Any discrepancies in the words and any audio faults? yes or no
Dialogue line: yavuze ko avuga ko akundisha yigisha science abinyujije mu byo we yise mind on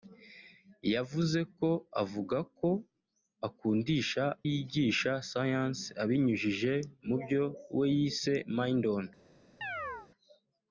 yes